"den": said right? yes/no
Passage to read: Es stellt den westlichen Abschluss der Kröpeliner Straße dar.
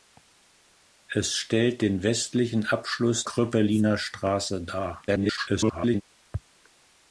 yes